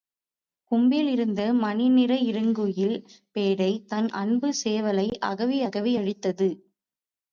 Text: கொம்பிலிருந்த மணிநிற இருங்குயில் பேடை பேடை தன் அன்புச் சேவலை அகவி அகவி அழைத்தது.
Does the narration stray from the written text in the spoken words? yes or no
yes